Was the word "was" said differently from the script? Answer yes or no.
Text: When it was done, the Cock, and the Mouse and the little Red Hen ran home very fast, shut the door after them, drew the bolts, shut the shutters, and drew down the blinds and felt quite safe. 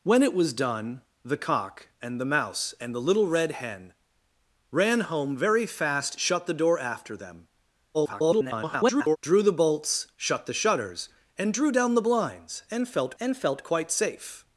no